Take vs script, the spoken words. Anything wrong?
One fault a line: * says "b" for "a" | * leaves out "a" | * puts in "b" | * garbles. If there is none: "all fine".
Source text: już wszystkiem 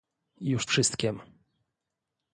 all fine